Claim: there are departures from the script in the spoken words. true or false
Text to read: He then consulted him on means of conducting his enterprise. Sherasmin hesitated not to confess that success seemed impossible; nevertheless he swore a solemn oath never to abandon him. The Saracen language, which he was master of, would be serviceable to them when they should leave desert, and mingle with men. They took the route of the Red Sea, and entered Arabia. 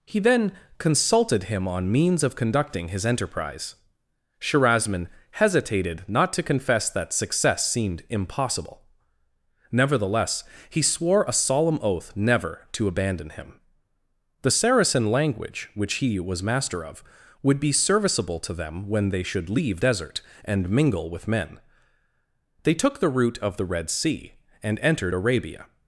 false